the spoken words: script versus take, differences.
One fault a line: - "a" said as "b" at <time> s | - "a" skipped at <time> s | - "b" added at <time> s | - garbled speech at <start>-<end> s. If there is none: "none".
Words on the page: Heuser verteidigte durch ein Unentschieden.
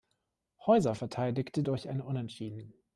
none